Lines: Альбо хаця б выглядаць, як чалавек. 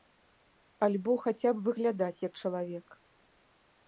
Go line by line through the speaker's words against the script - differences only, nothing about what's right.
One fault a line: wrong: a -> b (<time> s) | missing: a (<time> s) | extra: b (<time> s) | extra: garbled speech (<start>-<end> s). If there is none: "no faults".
no faults